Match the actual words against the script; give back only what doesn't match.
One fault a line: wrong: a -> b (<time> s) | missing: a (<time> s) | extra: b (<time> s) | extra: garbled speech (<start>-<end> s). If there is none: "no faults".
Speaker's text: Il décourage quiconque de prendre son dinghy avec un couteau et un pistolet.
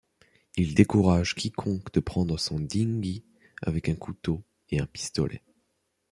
no faults